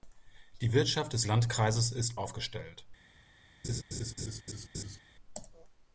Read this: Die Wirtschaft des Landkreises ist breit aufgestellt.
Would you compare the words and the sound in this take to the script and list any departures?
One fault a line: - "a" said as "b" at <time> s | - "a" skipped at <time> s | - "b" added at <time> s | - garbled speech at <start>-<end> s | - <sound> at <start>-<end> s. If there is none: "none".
- "breit" skipped at 2.2 s
- laugh at 3.6-5.0 s